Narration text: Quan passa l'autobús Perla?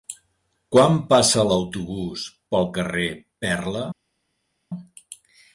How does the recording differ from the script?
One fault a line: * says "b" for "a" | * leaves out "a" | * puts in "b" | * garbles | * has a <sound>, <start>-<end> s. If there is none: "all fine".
* puts in "pel carrer"